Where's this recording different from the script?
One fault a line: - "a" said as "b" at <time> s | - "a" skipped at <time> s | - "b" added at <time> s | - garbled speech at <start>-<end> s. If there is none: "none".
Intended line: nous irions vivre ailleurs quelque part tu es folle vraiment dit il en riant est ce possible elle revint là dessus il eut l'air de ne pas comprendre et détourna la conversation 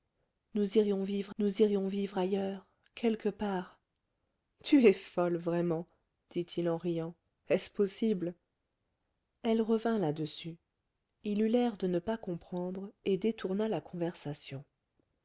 - "nous irions vivre" added at 1.4 s